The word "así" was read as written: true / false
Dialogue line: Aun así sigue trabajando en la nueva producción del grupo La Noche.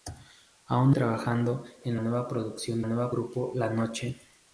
false